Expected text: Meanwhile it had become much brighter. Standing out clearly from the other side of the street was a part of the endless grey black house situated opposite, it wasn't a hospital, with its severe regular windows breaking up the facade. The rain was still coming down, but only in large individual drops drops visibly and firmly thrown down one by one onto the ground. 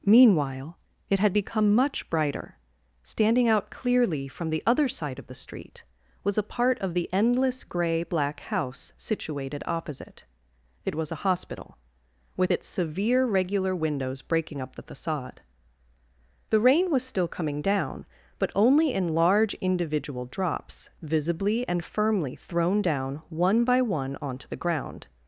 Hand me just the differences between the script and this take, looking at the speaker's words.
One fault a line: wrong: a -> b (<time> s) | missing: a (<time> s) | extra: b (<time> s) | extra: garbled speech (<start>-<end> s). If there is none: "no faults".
wrong: wasn't -> was (10.9 s)
missing: drops (20.9 s)